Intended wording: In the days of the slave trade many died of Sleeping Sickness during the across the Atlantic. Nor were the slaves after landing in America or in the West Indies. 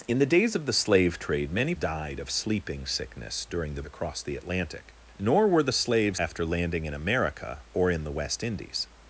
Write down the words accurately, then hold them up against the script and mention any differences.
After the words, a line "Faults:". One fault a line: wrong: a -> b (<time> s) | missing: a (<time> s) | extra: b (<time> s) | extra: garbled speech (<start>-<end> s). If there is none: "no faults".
In the days of the slave trade many died of Sleeping Sickness during the across the Atlantic. Nor were the slaves after landing in America or in the West Indies.
Faults:
no faults